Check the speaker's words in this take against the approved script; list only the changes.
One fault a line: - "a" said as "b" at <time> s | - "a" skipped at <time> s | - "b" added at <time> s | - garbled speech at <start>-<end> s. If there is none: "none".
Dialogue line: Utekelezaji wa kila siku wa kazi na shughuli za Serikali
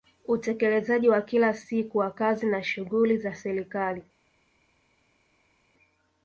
none